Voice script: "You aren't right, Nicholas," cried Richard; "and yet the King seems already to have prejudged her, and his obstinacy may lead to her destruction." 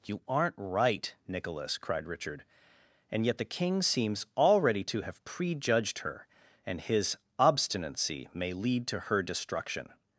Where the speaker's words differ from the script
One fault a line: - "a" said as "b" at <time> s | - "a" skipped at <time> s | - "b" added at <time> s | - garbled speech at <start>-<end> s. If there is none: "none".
none